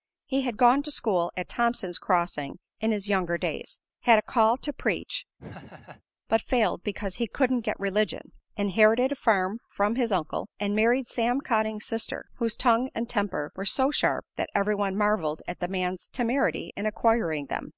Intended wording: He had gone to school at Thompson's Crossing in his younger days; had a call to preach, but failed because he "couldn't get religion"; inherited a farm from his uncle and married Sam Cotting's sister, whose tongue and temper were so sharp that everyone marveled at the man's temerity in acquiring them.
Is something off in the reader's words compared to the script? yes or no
no